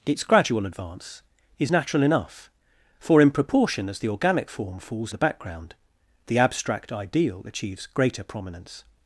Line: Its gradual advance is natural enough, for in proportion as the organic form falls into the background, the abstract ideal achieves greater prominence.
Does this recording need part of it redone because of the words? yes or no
yes